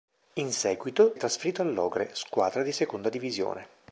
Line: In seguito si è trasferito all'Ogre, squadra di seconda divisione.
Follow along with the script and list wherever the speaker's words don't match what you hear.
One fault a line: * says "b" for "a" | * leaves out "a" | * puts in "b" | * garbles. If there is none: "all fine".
* leaves out "si"